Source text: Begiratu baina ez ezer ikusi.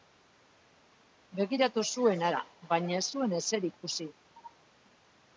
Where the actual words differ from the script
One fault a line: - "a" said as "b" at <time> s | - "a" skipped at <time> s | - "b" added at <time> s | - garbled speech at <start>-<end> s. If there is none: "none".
- "zuen hara" added at 2.0 s
- "zuen" added at 3.1 s